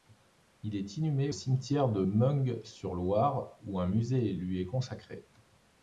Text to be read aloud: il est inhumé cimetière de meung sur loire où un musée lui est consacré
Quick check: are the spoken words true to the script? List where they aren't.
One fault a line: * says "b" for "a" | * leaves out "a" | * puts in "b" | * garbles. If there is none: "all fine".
all fine